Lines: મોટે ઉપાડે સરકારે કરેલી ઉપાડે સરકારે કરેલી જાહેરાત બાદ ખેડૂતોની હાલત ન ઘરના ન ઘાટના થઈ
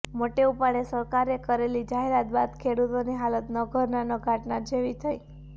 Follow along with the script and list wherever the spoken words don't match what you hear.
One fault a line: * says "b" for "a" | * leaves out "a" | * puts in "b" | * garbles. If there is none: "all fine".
* leaves out "ઉપાડે સરકારે કરેલી"
* puts in "જેવી"